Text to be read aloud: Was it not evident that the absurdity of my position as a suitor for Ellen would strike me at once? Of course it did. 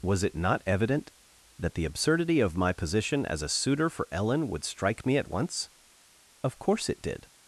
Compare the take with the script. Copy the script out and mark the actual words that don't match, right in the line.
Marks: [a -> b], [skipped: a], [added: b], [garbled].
Was it not evident that the absurdity of my position as a suitor for Ellen would strike me at once? Of course it did.